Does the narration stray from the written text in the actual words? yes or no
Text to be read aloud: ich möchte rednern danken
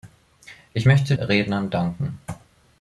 no